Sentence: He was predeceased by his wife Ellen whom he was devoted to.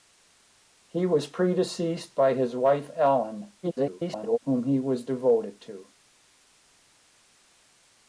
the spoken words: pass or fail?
fail